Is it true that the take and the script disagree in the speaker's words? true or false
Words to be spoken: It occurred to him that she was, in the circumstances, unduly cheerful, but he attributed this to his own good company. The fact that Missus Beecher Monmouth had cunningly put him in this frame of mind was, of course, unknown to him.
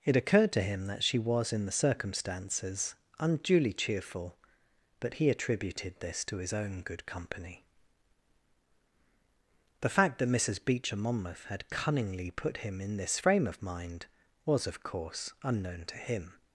false